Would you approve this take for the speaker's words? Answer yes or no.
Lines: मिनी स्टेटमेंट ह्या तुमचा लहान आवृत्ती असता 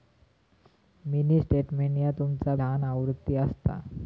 yes